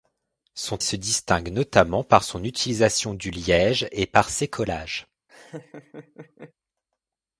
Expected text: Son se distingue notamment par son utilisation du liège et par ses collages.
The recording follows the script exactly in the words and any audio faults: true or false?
false